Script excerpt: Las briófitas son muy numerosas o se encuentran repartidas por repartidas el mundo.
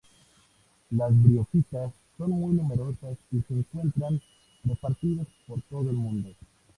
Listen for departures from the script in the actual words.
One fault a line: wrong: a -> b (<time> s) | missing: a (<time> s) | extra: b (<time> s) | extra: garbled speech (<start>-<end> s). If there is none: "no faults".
wrong: o -> y (3.3 s)
wrong: repartidas -> todo (5.7 s)